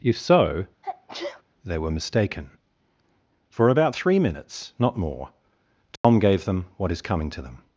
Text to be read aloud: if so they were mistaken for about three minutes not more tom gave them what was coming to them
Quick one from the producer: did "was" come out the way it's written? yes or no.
no